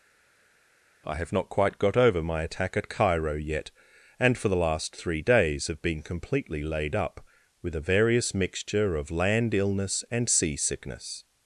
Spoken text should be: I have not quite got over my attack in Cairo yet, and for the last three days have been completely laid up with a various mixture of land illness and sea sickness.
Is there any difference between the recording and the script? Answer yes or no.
yes